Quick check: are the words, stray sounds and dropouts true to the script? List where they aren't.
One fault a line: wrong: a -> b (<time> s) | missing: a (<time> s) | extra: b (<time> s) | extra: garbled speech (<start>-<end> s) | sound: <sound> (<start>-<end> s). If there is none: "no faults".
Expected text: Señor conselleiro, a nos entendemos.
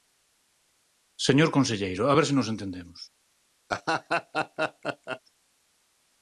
extra: ver se (2.2 s)
sound: laugh (3.7-5.2 s)